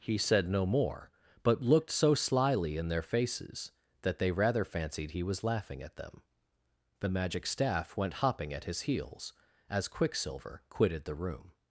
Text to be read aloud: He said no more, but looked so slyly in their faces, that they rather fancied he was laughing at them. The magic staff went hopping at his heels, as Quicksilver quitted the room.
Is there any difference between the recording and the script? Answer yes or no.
no